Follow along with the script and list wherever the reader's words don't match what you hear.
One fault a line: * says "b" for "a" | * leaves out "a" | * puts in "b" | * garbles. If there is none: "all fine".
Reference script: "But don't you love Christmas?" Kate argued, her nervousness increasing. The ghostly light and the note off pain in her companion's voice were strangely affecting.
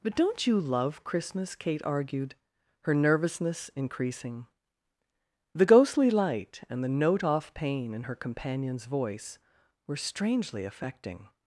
all fine